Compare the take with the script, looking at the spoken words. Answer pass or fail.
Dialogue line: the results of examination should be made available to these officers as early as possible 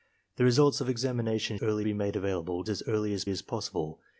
fail